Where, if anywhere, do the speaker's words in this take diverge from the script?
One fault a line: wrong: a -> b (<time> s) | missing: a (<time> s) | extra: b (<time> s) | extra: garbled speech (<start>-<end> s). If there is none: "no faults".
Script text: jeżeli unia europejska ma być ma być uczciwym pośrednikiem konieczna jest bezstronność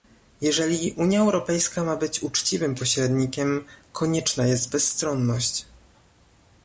missing: ma być (2.2 s)